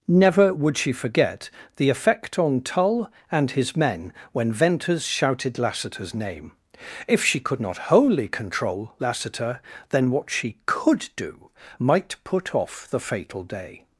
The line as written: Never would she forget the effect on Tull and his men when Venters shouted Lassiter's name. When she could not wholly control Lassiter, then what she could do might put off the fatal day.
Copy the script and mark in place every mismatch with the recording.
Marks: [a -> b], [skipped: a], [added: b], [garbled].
Never would she forget the effect on Tull and his men when Venters shouted Lassiter's name. [When -> If] she could not wholly control Lassiter, then what she could do might put off the fatal day.